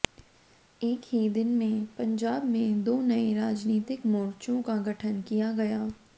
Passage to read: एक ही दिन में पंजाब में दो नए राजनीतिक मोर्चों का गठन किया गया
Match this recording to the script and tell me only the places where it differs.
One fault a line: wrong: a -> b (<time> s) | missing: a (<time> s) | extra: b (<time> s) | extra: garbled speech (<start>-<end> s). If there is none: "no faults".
no faults